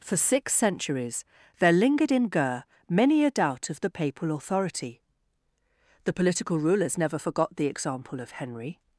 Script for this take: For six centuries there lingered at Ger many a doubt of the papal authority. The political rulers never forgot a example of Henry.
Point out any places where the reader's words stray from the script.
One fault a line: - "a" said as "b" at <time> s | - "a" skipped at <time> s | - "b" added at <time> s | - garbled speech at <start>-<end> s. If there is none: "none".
- "at" said as "in" at 2.1 s
- "a" said as "the" at 7.6 s